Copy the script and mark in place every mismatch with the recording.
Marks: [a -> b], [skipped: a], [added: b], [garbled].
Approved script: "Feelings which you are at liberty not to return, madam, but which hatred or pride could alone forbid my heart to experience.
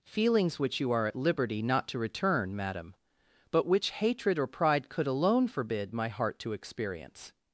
"Feelings which you are at liberty not to return, madam, but which hatred or pride could alone forbid my heart to experience.